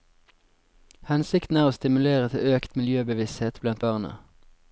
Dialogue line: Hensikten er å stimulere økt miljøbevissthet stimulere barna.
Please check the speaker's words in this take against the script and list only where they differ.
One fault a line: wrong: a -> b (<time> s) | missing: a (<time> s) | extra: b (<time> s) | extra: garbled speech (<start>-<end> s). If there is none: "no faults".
extra: til (2.3 s)
wrong: stimulere -> blant (3.6 s)